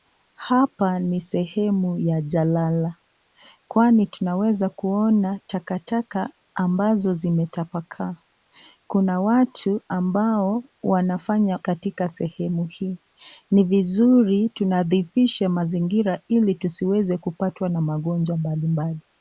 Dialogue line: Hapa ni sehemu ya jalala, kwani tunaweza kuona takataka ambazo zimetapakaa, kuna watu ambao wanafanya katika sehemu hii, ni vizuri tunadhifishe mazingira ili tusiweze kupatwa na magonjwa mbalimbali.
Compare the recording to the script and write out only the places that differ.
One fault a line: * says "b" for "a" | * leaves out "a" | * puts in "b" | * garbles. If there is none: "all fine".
all fine